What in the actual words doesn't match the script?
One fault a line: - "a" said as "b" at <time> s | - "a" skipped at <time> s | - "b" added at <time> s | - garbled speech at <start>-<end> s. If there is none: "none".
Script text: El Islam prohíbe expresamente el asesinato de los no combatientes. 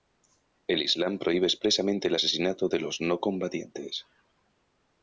none